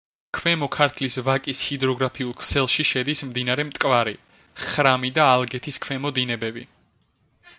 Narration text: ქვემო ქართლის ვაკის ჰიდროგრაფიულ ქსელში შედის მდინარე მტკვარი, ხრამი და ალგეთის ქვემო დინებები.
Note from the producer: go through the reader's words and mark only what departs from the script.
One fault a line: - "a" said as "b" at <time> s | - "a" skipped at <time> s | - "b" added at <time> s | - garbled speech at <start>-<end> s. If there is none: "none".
none